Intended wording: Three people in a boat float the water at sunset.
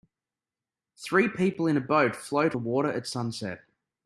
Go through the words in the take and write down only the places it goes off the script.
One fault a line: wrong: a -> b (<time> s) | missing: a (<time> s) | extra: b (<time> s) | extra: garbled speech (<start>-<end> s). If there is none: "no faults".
no faults